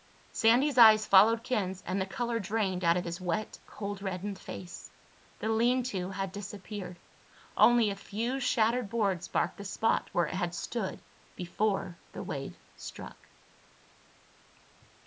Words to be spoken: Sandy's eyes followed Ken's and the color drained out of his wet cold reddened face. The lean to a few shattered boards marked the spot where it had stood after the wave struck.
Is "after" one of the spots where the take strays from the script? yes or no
yes